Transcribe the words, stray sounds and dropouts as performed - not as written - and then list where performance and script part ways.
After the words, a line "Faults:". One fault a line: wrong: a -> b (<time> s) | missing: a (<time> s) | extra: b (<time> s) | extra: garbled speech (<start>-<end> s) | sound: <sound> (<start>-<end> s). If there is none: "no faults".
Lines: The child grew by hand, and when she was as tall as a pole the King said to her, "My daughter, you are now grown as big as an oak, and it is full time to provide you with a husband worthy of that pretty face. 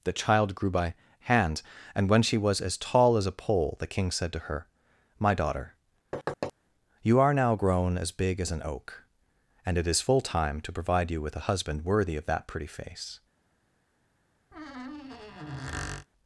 The child grew by hand, and when she was as tall as a pole the King said to her, "My daughter, you are now grown as big as an oak, and it is full time to provide you with a husband worthy of that pretty face.
Faults:
sound: thud (6.1-6.5 s)
sound: squeak (14.5-16.1 s)